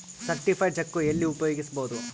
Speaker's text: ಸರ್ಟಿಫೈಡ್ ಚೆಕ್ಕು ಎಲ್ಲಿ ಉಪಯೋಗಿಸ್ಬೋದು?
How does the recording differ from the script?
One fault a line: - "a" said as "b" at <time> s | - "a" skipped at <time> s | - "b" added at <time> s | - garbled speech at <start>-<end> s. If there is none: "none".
none